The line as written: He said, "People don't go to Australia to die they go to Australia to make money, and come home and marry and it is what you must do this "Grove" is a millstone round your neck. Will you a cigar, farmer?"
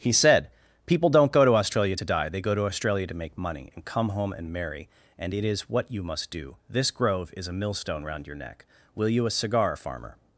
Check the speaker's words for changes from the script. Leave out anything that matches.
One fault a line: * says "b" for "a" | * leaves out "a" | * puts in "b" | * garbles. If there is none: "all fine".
all fine